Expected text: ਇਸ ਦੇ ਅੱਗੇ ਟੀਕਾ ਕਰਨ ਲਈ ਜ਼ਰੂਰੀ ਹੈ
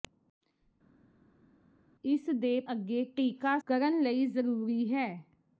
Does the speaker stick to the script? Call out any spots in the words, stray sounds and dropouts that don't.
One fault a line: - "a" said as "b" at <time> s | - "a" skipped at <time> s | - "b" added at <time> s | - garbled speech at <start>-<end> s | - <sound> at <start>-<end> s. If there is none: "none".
none